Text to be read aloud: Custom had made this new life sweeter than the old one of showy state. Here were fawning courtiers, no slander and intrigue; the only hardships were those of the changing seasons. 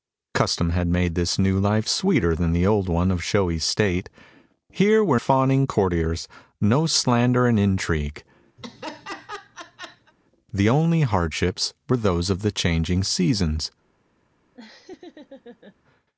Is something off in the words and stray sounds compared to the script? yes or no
yes